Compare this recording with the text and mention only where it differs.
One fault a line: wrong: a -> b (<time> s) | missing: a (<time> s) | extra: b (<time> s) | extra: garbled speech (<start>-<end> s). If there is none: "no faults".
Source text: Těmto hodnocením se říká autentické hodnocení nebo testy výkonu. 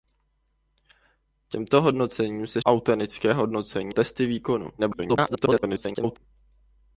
missing: říká (2.6 s)
missing: nebo (3.9 s)
extra: garbled speech (4.8-6.2 s)